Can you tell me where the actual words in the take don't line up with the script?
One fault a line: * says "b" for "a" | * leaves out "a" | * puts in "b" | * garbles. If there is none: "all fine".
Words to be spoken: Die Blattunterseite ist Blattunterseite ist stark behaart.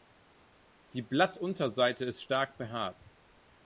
* leaves out "Blattunterseite ist"